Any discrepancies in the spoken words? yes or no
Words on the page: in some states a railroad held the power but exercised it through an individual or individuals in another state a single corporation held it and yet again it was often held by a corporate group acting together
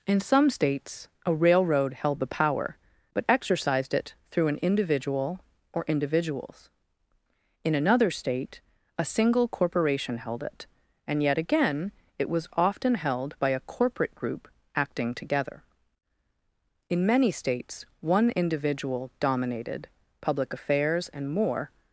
yes